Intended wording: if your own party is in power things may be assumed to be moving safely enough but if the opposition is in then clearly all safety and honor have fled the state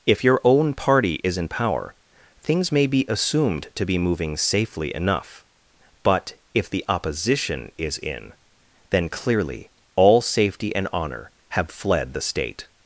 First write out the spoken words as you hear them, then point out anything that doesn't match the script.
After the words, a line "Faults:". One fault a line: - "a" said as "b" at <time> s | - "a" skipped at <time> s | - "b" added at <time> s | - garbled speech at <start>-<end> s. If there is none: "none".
if your own party is in power things may be assumed to be moving safely enough but if the opposition is in then clearly all safety and honor have fled the state
Faults:
none